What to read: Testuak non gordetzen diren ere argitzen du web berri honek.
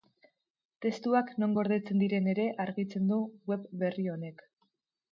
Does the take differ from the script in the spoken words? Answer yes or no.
no